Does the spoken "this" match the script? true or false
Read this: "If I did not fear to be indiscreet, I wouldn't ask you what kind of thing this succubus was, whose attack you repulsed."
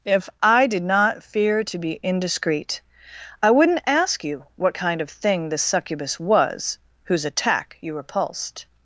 true